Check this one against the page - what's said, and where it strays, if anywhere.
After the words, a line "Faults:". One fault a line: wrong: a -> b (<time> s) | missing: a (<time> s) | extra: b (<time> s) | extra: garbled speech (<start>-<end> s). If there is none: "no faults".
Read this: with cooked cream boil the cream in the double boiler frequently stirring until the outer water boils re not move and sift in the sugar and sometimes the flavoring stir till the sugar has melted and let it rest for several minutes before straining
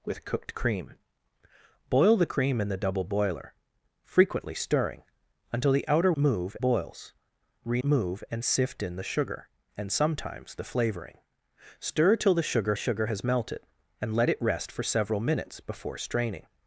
with cooked cream boil the cream in the double boiler frequently stirring until the outer move boils re move and sift in the sugar and sometimes the flavoring stir till the sugar sugar has melted and let it rest for several minutes before straining
Faults:
wrong: water -> move (6.2 s)
missing: not (7.8 s)
extra: sugar (12.8 s)